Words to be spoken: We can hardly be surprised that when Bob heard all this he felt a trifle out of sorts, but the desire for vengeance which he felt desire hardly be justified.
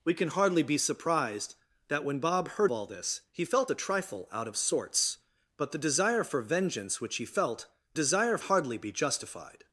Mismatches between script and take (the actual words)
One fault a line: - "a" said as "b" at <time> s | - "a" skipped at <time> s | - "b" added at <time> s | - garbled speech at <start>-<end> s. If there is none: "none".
none